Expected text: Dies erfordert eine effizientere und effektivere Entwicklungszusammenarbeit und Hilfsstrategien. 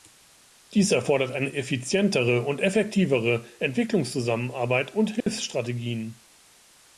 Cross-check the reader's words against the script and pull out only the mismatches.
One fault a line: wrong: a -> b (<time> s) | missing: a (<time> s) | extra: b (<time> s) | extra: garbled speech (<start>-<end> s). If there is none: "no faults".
no faults